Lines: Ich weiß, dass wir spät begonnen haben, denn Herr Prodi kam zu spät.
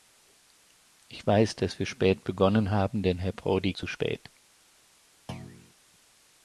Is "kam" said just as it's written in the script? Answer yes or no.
no